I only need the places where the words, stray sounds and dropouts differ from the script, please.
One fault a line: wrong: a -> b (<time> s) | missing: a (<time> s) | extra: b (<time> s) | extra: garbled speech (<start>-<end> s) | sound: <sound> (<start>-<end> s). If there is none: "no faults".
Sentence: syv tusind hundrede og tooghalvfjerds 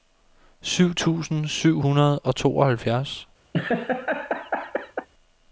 extra: syv (1.5 s)
sound: laugh (3.5-5.1 s)